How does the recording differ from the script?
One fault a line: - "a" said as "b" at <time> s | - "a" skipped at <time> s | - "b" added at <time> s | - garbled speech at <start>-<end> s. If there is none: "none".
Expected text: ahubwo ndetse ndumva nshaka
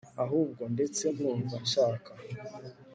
none